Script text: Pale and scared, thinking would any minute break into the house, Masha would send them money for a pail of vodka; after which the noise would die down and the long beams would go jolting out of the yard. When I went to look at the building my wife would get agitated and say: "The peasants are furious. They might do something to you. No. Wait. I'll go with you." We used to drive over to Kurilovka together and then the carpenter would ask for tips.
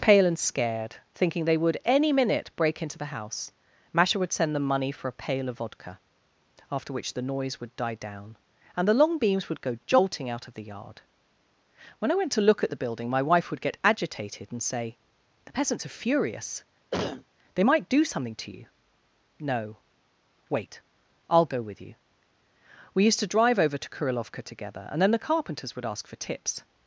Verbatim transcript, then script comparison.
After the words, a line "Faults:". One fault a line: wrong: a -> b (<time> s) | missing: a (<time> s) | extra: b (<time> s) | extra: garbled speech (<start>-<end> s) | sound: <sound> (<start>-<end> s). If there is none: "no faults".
Pale and scared, thinking they would any minute break into the house, Masha would send them money for a pail of vodka; after which the noise would die down and the long beams would go jolting out of the yard. When I went to look at the building my wife would get agitated and say: "The peasants are furious. They might do something to you. No. Wait. I'll go with you." We used to drive over to Kurilovka together and then the carpenters would ask for tips.
Faults:
extra: they (1.4 s)
sound: cough (16.9-17.2 s)
wrong: carpenter -> carpenters (25.2 s)